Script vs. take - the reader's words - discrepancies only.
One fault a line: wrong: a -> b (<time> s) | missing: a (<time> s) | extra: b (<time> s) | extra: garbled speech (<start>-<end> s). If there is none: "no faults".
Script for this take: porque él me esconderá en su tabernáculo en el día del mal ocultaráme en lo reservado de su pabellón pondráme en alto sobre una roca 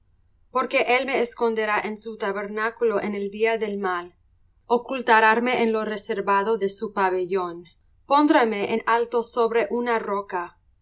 no faults